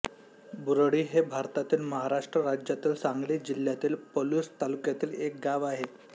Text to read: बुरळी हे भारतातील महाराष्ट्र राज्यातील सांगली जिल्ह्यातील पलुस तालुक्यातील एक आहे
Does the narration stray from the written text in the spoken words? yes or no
yes